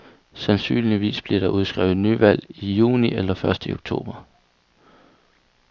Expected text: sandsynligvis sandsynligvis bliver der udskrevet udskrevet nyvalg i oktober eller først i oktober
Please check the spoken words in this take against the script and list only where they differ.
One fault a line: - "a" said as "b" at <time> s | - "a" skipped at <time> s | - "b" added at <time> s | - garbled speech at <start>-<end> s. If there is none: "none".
- "sandsynligvis" skipped at 1.2 s
- "udskrevet" skipped at 2.0 s
- "oktober" said as "juni" at 2.7 s